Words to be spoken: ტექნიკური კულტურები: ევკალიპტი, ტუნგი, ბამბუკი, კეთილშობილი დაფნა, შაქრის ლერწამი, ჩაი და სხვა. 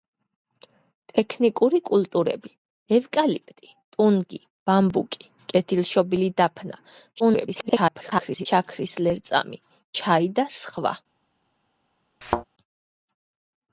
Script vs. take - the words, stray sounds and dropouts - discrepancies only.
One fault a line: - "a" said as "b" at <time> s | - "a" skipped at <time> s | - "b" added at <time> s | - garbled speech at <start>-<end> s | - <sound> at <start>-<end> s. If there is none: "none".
- garbled speech at 7.2-8.5 s
- thud at 12.2-12.4 s